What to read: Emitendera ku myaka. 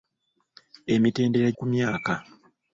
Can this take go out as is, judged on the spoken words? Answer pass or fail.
pass